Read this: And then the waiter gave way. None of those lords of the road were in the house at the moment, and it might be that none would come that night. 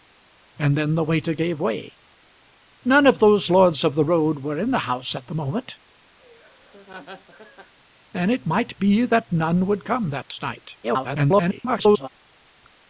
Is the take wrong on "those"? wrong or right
right